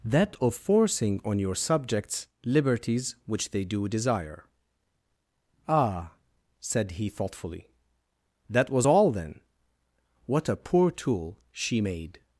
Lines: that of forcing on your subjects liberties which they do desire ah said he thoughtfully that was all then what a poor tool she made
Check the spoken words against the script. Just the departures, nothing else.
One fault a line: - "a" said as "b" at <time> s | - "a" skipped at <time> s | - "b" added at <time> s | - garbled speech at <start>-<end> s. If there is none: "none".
none